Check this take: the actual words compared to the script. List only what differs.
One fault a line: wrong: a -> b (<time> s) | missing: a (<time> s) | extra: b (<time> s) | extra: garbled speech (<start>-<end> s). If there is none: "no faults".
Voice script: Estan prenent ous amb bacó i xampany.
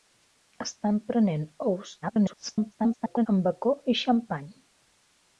extra: garbled speech (2.0-3.3 s)